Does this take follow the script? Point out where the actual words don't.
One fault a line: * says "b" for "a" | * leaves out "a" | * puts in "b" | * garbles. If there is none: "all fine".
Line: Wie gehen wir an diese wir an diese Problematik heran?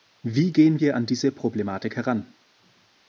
* leaves out "wir an diese"